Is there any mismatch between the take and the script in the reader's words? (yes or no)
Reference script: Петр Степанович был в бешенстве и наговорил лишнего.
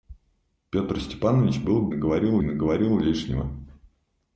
yes